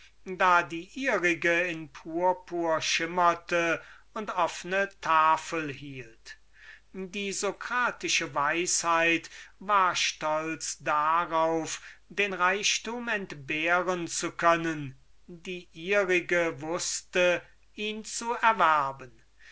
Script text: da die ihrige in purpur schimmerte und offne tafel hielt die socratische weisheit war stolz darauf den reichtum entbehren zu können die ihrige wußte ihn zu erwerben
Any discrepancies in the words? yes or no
no